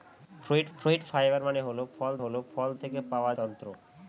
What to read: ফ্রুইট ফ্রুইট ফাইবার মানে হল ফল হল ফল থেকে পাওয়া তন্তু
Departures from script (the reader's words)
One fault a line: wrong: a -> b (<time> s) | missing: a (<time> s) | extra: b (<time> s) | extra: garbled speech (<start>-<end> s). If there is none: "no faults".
no faults